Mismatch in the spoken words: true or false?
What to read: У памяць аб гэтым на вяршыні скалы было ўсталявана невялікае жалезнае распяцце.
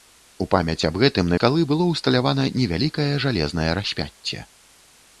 true